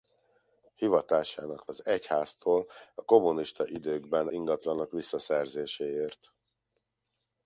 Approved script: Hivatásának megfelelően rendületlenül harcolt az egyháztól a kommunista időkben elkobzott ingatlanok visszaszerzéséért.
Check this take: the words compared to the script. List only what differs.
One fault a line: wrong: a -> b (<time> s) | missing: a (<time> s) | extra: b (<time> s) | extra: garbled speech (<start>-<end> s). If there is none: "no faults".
missing: megfelelően rendületlenül harcolt (1.7 s)
missing: elkobzott (4.3 s)